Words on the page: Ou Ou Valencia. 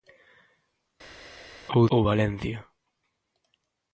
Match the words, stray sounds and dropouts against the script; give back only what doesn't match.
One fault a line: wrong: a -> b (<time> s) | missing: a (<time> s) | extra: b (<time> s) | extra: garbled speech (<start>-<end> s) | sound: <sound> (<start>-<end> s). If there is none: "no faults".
no faults